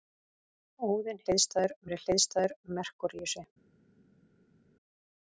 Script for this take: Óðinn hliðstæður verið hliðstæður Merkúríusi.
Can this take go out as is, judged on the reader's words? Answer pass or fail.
pass